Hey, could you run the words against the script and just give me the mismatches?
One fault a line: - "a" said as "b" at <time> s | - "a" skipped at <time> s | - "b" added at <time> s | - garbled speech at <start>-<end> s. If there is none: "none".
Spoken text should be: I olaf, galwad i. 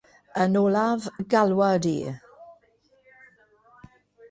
- "I" said as "Yn" at 0.4 s